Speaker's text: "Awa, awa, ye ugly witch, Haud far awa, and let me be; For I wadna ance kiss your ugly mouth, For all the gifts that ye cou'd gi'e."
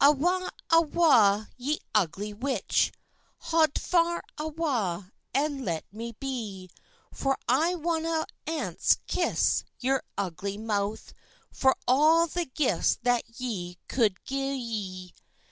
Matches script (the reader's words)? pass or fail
pass